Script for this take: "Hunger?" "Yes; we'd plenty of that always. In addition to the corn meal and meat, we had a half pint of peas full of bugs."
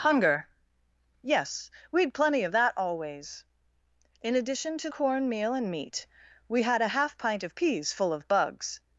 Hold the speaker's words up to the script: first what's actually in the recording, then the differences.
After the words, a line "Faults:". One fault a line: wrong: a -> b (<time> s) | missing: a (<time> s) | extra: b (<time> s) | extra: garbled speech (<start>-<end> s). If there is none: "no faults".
"Hunger?" "Yes; we'd plenty of that always. In addition to corn meal and meat, we had a half pint of peas full of bugs."
Faults:
missing: the (4.9 s)